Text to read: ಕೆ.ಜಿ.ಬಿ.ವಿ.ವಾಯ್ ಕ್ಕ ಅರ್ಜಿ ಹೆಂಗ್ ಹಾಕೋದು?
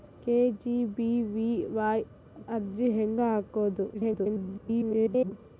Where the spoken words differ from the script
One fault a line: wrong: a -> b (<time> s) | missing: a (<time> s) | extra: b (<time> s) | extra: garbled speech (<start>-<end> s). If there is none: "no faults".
missing: ಕ್ಕ (2.0 s)
extra: garbled speech (3.9-5.3 s)